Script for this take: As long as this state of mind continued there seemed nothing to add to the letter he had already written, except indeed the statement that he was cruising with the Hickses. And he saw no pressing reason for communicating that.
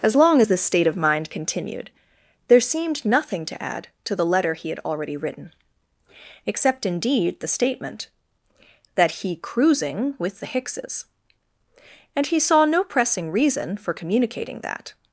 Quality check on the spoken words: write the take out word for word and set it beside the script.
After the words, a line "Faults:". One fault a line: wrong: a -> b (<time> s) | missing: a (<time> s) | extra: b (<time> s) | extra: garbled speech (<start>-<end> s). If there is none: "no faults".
As long as this state of mind continued there seemed nothing to add to the letter he had already written, except indeed the statement that he cruising with the Hickses. And he saw no pressing reason for communicating that.
Faults:
missing: was (9.4 s)